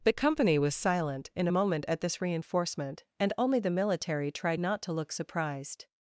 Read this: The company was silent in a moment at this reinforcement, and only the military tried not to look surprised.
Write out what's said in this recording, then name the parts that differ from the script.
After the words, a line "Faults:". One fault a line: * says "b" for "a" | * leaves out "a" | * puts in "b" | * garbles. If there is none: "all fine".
The company was silent in a moment at this reinforcement, and only the military tried not to look surprised.
Faults:
all fine